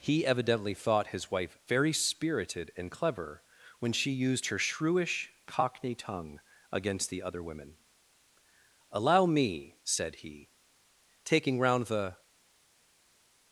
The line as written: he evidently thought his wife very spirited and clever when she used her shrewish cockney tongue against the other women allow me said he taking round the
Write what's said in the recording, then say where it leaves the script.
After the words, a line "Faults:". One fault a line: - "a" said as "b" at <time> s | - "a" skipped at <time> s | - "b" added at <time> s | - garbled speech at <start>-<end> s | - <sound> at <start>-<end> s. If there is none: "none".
he evidently thought his wife very spirited and clever when she used her shrewish cockney tongue against the other women allow me said he taking round the
Faults:
none